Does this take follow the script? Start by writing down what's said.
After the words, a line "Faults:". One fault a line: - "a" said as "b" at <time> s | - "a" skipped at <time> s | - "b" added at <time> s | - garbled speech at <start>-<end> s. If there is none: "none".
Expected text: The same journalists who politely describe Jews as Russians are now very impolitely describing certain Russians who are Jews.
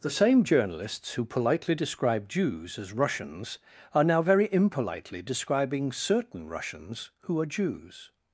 The same journalists who politely describe Jews as Russians are now very impolitely describing certain Russians who are Jews.
Faults:
none